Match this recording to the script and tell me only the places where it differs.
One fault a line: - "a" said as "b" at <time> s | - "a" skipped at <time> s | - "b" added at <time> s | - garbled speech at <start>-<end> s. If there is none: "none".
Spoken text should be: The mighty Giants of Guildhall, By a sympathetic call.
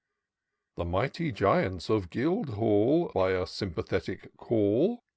none